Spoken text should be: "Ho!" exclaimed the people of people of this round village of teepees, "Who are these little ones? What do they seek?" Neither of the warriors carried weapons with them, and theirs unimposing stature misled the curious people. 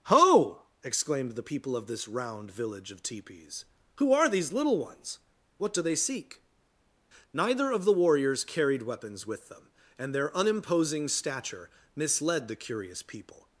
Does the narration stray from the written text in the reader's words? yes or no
yes